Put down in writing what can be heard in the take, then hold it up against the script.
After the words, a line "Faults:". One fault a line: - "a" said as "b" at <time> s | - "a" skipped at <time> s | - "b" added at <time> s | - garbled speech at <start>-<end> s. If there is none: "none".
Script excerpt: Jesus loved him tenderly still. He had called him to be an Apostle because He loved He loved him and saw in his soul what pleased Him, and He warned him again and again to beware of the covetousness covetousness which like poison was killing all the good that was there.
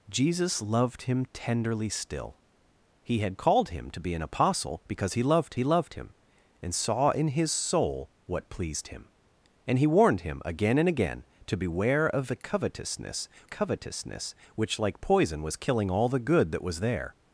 Jesus loved him tenderly still. He had called him to be an Apostle because He loved He loved him and saw in his soul what pleased Him, and He warned him again and again to beware of the covetousness covetousness which like poison was killing all the good that was there.
Faults:
none